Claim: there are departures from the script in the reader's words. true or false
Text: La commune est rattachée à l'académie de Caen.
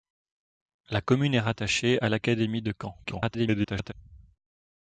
true